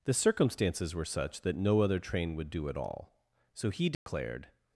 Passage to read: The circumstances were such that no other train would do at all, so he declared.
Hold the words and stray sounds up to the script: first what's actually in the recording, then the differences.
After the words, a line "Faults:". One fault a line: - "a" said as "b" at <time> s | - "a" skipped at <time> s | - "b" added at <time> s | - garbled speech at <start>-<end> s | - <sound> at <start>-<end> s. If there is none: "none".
The circumstances were such that no other train would do at all, so he declared.
Faults:
- dropout at 3.9-4.1 s